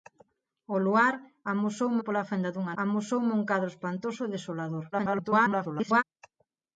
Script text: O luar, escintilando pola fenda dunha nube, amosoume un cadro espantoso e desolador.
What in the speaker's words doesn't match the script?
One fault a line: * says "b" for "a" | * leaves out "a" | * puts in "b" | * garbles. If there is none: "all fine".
* says "amosoume" for "escintilando"
* leaves out "nube"
* garbles